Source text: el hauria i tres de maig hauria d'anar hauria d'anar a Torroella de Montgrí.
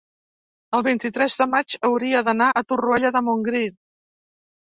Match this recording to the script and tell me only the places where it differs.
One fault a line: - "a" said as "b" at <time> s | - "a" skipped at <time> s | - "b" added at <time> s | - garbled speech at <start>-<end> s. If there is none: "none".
- "hauria" said as "vint" at 0.9 s
- "hauria d'anar" skipped at 2.5 s